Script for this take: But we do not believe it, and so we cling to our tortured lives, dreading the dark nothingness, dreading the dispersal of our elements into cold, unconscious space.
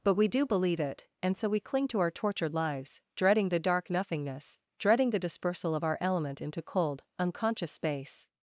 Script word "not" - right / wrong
wrong